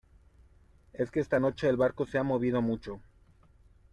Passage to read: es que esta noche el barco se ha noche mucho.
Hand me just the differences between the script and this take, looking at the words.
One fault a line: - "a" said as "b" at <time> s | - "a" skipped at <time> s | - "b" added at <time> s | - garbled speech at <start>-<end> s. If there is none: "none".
- "noche" said as "movido" at 2.2 s